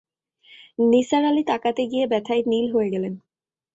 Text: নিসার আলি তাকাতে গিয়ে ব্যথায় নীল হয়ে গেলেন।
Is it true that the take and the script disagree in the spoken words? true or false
false